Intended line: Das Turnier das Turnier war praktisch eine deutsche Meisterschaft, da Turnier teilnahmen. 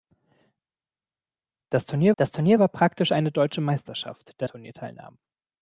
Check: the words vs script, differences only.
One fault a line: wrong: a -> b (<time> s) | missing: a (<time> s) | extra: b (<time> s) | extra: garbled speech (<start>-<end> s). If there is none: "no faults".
no faults